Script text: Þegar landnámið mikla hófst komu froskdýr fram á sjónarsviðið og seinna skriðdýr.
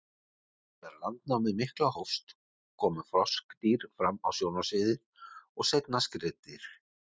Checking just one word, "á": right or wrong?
right